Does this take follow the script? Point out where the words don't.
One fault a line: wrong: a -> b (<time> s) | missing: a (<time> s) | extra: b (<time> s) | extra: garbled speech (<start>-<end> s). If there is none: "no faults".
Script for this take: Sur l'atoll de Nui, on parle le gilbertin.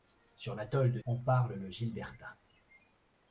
missing: Nui (1.0 s)